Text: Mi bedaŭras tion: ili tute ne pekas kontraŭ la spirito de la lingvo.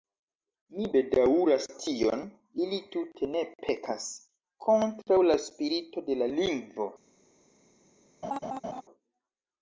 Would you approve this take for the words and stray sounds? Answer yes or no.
no